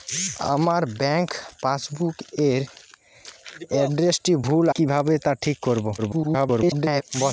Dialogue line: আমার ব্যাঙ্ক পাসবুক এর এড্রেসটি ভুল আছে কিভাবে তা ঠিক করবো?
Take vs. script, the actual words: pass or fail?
fail